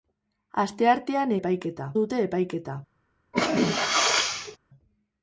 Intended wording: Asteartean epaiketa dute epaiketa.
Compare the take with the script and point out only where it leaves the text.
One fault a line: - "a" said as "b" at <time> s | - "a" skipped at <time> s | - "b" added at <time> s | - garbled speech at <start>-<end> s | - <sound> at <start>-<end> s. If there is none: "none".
- sneeze at 3.3-4.6 s